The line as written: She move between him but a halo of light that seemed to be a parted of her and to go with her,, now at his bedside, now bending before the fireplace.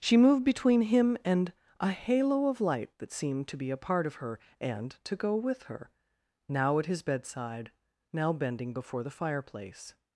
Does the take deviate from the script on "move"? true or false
true